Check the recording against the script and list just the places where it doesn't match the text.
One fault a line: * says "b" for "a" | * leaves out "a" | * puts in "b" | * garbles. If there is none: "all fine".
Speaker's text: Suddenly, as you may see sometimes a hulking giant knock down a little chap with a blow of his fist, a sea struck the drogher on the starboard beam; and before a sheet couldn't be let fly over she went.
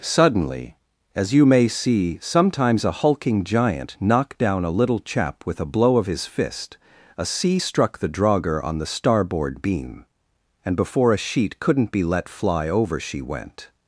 all fine